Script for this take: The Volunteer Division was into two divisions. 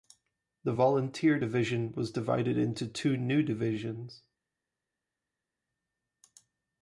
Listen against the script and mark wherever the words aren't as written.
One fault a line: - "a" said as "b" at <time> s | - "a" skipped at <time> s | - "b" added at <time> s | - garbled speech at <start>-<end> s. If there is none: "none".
- "divided" added at 2.1 s
- "new" added at 3.2 s